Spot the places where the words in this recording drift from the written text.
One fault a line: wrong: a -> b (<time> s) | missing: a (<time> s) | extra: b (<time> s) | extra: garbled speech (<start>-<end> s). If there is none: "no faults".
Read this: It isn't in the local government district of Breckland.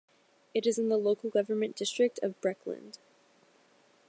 wrong: isn't -> is (0.7 s)